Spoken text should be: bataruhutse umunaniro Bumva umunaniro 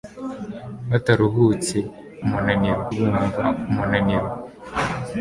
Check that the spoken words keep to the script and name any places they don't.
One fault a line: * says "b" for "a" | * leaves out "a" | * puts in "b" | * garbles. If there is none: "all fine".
all fine